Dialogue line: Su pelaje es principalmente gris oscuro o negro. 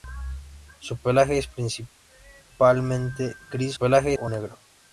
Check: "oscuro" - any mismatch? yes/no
yes